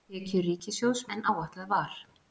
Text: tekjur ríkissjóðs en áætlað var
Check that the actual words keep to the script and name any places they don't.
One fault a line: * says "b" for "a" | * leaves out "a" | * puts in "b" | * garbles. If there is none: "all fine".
all fine